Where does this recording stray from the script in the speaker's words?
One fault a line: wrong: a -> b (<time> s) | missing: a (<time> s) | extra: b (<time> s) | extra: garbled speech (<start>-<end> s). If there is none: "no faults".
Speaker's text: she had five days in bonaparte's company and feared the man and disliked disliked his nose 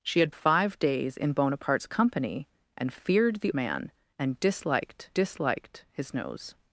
no faults